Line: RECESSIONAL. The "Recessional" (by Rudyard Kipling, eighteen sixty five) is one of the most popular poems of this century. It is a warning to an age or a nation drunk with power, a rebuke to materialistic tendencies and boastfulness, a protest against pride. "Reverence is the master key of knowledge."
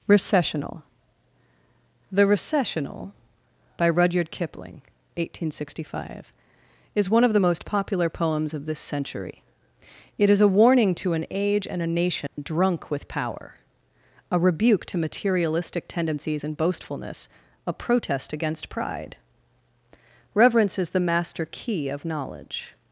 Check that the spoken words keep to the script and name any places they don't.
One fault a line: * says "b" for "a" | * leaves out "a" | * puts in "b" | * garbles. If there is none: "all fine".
* says "and" for "or"